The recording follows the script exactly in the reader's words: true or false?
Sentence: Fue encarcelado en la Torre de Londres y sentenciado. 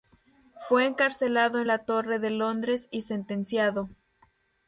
true